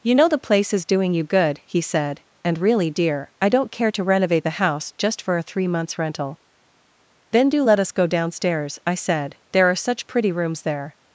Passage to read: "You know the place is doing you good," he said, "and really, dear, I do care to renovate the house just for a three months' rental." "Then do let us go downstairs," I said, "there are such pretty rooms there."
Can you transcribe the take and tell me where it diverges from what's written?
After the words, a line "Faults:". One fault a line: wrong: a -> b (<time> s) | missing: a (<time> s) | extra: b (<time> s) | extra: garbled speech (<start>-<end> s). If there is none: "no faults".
"You know the place is doing you good," he said, "and really, dear, I don't care to renovate the house just for a three months' rental." "Then do let us go downstairs," I said, "there are such pretty rooms there."
Faults:
wrong: do -> don't (3.5 s)